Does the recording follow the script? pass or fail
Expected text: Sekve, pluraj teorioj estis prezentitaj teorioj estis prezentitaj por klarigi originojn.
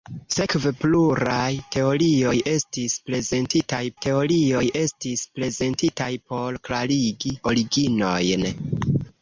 pass